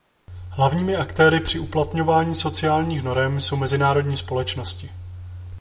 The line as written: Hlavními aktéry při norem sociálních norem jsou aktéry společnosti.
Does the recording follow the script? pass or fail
fail